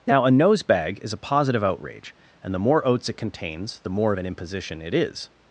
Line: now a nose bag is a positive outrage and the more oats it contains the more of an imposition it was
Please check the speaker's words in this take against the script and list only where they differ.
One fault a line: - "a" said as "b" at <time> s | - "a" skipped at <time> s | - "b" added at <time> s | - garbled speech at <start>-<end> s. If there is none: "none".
- "was" said as "is" at 4.9 s